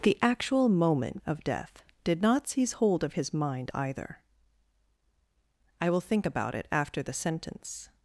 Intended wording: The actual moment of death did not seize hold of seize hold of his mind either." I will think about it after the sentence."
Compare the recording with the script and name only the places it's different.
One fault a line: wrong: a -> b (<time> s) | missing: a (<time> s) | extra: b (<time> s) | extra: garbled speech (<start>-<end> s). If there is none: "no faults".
missing: seize hold of (3.1 s)